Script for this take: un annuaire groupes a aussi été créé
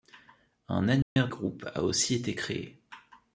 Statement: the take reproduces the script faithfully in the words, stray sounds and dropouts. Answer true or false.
false